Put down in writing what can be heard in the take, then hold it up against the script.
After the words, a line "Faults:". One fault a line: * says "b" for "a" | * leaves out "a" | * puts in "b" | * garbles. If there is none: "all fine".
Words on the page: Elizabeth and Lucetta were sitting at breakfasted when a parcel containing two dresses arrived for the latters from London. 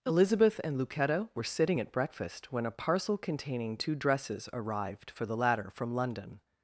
Elizabeth and Lucetta were sitting at breakfast when a parcel containing two dresses arrived for the latter from London.
Faults:
* says "breakfast" for "breakfasted"
* says "latter" for "latters"